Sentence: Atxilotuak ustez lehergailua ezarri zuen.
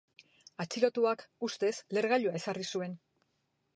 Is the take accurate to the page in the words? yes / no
yes